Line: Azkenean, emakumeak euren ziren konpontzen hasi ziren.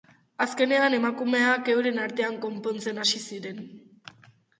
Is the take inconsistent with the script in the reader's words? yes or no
yes